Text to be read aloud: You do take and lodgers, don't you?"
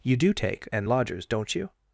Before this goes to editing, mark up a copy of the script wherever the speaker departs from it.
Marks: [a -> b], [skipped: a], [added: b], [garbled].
You do take and lodgers, don't you?"